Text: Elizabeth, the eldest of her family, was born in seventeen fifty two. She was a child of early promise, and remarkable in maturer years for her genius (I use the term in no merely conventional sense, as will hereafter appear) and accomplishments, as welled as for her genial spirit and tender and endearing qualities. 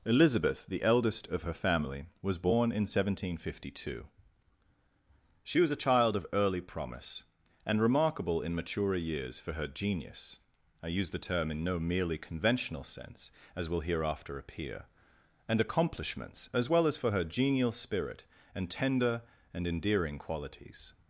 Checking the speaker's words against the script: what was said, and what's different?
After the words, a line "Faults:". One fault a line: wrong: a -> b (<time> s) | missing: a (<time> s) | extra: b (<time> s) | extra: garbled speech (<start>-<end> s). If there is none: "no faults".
Elizabeth, the eldest of her family, was born in seventeen fifty two. She was a child of early promise, and remarkable in maturer years for her genius (I use the term in no merely conventional sense, as will hereafter appear) and accomplishments, as well as for her genial spirit and tender and endearing qualities.
Faults:
wrong: welled -> well (16.7 s)